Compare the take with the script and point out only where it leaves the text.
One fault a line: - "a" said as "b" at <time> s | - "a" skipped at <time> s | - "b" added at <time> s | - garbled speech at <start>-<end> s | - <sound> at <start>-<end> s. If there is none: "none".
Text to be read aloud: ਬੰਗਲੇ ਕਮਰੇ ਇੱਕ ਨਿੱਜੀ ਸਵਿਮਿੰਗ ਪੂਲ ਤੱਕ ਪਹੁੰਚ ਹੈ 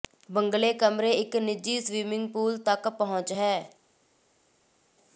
none